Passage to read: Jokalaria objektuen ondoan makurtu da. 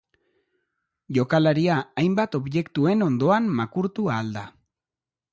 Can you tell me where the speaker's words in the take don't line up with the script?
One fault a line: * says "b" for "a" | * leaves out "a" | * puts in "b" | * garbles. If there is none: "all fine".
* puts in "hainbat"
* puts in "ahal"